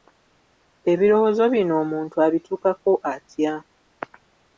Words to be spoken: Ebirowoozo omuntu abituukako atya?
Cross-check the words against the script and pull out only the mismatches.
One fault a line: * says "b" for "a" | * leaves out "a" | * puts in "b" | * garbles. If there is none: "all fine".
* puts in "bino"